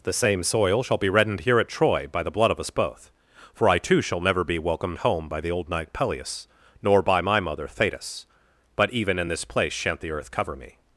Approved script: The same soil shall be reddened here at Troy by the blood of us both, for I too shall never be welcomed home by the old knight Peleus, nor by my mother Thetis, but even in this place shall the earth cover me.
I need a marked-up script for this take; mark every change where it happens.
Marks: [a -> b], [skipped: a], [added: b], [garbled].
The same soil shall be reddened here at Troy by the blood of us both, for I too shall never be welcomed home by the old knight Peleus, nor by my mother Thetis, but even in this place [shall -> shan't] the earth cover me.